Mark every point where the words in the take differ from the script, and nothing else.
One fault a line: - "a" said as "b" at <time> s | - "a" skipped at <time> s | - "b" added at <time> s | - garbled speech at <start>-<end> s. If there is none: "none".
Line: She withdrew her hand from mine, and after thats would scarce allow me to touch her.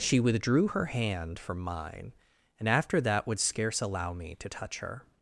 - "thats" said as "that" at 3.0 s